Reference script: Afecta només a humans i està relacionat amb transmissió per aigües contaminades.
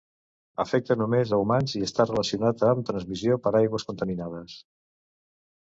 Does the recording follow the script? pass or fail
pass